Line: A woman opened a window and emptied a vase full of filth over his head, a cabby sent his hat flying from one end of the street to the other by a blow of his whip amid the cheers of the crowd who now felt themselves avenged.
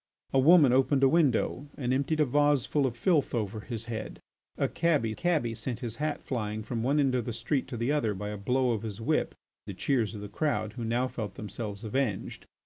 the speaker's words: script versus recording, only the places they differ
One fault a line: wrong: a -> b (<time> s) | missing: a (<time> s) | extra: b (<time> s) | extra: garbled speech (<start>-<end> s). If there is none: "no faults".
extra: cabby (5.1 s)
missing: amid (9.3 s)